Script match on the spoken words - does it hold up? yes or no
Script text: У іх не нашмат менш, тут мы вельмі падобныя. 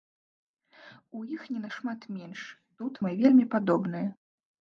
yes